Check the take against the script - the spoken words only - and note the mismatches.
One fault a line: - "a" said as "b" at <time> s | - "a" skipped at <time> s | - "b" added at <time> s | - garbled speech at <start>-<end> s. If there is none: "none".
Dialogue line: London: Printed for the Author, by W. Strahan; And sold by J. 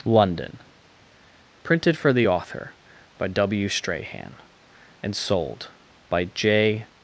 none